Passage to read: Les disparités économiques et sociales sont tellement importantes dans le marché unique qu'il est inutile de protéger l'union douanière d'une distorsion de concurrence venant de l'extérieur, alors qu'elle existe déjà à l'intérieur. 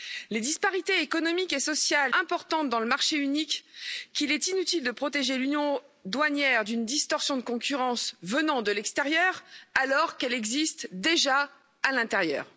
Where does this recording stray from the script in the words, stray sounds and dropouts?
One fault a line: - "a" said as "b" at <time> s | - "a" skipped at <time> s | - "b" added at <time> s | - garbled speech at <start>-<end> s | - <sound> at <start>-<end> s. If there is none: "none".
- "sont tellement" skipped at 2.1 s